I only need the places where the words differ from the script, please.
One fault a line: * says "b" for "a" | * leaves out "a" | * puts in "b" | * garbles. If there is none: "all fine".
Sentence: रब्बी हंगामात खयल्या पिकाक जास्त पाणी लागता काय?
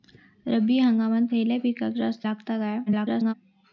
* leaves out "पाणी"
* garbles